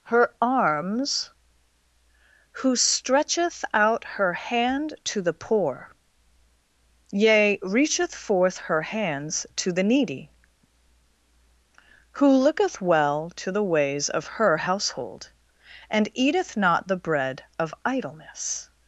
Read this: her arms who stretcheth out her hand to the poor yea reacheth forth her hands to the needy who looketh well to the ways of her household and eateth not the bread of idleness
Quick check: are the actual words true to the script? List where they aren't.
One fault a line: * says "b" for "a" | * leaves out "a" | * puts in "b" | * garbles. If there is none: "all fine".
all fine